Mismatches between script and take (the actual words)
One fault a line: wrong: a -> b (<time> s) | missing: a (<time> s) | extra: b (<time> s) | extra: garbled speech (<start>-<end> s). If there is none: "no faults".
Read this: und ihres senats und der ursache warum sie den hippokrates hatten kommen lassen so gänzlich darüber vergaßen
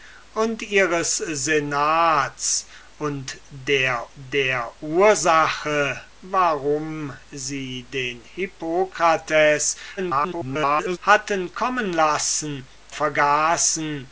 extra: der (4.1 s)
extra: garbled speech (10.0-11.0 s)
missing: so gänzlich darüber (12.7 s)